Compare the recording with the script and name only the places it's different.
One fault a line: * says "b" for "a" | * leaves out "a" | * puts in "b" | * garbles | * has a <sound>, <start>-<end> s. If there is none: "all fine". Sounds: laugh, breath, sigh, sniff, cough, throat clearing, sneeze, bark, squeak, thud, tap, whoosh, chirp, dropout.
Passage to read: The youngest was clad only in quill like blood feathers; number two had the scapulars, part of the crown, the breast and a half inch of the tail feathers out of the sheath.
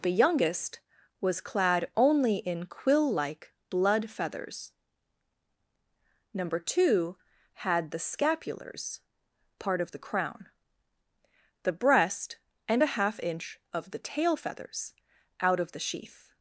all fine